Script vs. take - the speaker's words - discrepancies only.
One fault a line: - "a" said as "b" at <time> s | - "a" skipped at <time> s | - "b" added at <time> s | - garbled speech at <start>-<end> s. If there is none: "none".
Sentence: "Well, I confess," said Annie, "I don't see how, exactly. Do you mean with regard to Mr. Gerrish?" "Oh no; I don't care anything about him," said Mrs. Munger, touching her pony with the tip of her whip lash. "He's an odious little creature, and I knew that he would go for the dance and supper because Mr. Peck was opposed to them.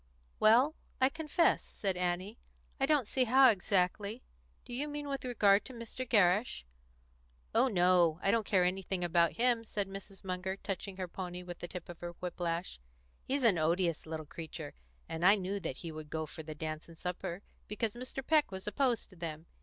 none